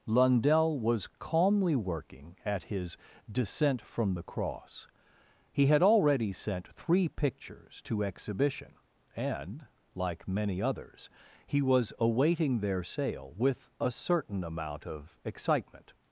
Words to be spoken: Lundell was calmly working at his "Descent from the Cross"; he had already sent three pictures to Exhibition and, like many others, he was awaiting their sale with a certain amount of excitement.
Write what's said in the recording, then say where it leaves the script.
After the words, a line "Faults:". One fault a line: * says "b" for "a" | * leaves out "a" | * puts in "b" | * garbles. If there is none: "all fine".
Lundell was calmly working at his "Descent from the Cross"; he had already sent three pictures to Exhibition and, like many others, he was awaiting their sale with a certain amount of excitement.
Faults:
all fine